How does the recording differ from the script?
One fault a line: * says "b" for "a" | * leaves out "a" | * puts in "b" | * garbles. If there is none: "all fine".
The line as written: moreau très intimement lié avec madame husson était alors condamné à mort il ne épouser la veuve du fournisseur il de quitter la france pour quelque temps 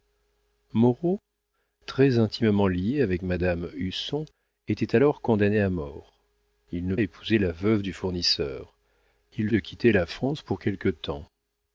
all fine